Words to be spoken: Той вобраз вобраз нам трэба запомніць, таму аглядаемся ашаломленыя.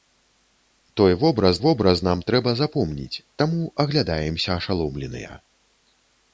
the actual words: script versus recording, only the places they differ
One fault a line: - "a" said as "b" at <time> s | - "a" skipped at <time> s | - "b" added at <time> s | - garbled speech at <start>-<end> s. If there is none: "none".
none